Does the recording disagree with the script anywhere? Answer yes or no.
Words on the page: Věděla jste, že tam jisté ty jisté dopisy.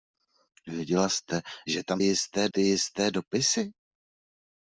no